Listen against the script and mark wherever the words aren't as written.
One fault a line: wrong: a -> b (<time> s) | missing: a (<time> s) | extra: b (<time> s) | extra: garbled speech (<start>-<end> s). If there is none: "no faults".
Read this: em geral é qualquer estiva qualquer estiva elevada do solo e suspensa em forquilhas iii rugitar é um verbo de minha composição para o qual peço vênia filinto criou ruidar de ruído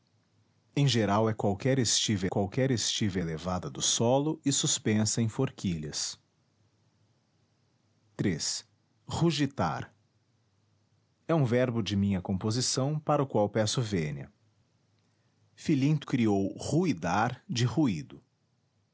no faults